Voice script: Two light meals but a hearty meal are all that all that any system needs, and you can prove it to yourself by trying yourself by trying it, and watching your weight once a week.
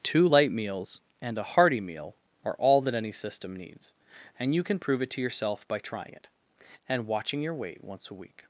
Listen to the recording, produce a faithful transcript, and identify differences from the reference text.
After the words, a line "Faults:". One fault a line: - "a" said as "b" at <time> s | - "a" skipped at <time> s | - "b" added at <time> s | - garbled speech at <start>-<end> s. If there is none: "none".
Two light meals and a hearty meal are all that any system needs, and you can prove it to yourself by trying it, and watching your weight once a week.
Faults:
- "but" said as "and" at 1.2 s
- "all that" skipped at 2.9 s
- "yourself by trying" skipped at 6.1 s